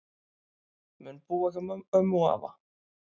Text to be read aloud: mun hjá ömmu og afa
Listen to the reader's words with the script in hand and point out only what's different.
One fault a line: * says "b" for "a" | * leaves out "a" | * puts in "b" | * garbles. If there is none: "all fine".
* puts in "búa"